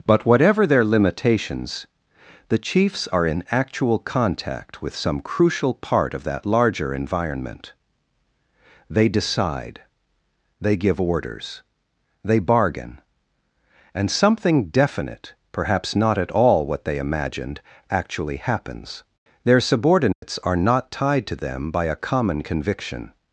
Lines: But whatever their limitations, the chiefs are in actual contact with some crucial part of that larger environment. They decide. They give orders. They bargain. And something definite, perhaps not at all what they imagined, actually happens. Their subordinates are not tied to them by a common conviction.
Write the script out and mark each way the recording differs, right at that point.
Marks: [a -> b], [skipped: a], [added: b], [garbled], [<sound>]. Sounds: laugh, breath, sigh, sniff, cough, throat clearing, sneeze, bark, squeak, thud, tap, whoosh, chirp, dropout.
But whatever their limitations, the chiefs are in actual contact with some crucial part of that larger environment. They decide. They give orders. They bargain. And something definite, perhaps not at all what they imagined, actually happens. Their subordinates [dropout] are not tied to them by a common conviction.